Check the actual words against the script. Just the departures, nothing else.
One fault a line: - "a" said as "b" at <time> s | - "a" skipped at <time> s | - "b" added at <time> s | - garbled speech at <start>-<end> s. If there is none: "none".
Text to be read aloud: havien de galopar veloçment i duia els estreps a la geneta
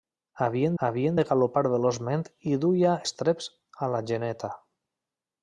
- "havien" added at 0.8 s
- "els" skipped at 2.9 s